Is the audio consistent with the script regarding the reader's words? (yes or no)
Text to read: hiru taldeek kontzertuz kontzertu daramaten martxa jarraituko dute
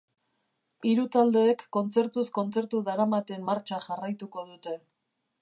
yes